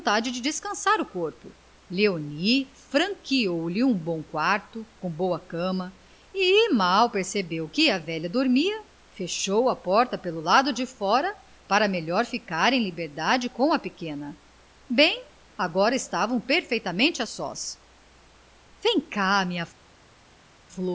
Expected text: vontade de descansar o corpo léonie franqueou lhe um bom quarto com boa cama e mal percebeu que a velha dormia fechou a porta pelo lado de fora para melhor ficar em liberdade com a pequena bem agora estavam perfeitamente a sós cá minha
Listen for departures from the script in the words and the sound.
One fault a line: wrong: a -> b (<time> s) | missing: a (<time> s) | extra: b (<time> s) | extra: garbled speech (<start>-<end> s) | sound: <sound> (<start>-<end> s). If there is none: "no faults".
extra: vem (18.8 s)